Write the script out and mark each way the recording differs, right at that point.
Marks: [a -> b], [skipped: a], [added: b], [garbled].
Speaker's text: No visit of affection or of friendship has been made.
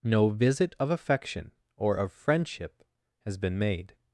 No visit of affection or of friendship has been made.